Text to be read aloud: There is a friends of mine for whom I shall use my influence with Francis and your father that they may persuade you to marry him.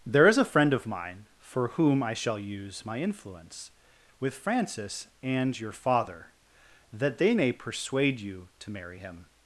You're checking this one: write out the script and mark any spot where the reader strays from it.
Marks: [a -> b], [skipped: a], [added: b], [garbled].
There is a [friends -> friend] of mine for whom I shall use my influence with Francis and your father that they may persuade you to marry him.